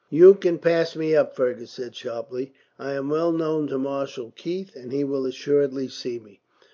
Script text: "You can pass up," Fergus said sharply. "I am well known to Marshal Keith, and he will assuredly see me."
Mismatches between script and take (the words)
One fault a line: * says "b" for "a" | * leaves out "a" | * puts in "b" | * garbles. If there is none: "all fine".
* puts in "me"